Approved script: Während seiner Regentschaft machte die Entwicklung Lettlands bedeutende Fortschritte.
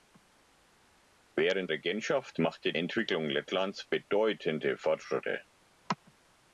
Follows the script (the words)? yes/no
no